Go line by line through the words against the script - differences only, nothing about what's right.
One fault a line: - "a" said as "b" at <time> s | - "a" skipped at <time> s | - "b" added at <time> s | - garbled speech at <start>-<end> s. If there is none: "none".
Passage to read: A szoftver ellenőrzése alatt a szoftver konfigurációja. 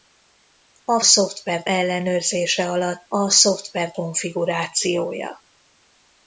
none